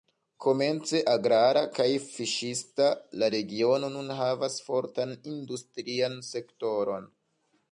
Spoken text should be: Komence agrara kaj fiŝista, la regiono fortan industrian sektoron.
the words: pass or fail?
fail